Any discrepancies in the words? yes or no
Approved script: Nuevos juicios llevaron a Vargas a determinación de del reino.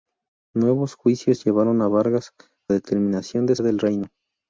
no